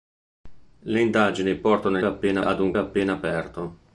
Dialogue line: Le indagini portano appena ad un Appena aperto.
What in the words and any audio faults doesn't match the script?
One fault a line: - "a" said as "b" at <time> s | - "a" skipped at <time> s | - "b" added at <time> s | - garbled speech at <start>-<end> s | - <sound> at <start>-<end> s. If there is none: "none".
none